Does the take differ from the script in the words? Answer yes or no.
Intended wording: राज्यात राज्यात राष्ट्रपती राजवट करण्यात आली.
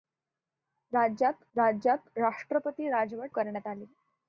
no